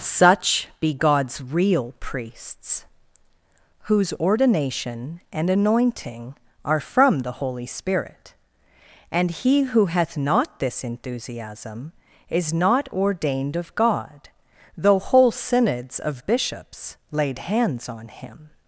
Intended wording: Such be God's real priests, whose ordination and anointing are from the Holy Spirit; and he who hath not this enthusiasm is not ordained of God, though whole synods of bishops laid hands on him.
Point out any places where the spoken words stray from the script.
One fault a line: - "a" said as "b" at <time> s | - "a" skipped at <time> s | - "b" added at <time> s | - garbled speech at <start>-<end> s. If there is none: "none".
none